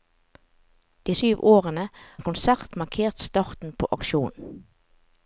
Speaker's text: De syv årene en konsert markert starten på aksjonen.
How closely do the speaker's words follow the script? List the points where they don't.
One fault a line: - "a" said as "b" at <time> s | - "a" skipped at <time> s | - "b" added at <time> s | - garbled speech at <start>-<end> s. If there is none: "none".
none